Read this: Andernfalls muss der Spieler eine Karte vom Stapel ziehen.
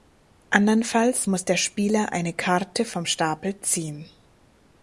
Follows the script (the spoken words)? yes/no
yes